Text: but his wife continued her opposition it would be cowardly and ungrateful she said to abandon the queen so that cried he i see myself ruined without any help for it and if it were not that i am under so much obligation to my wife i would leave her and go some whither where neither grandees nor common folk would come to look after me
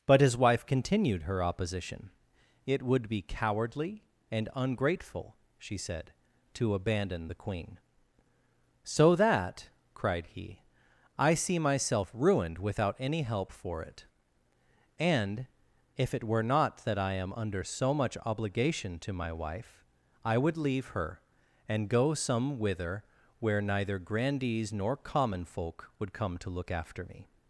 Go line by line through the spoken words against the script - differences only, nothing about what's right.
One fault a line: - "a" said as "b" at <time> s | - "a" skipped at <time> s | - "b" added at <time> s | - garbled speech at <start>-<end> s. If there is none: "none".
none